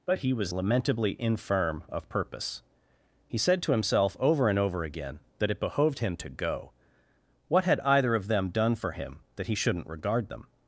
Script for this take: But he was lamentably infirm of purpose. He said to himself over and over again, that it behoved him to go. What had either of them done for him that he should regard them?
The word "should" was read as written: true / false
false